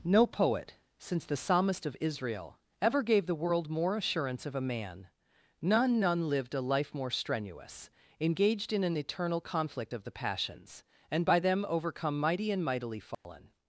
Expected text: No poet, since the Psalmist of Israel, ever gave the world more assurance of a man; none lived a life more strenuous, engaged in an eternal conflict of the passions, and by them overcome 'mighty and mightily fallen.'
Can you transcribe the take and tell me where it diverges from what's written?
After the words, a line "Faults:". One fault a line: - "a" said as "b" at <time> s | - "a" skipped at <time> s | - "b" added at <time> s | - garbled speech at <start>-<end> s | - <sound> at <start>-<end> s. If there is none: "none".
No poet, since the Psalmist of Israel, ever gave the world more assurance of a man; none none lived a life more strenuous, engaged in an eternal conflict of the passions, and by them overcome 'mighty and mightily fallen.'
Faults:
- "none" added at 6.0 s
- dropout at 13.1-13.2 s